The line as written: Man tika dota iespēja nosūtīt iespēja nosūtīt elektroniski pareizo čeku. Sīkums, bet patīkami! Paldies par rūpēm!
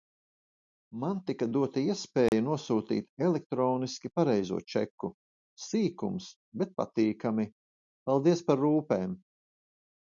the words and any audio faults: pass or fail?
fail